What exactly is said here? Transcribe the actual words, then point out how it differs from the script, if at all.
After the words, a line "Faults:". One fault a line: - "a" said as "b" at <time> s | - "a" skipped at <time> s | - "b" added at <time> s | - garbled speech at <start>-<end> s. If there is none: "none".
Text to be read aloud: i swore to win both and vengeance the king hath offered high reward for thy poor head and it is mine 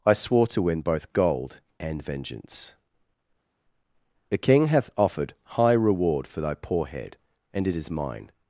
i swore to win both gold and vengeance the king hath offered high reward for thy poor head and it is mine
Faults:
- "gold" added at 1.1 s